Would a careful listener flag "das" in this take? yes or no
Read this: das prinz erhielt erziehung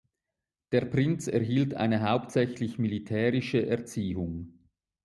yes